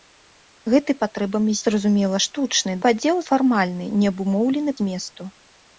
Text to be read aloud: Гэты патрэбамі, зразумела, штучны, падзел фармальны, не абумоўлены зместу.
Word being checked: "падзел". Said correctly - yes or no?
yes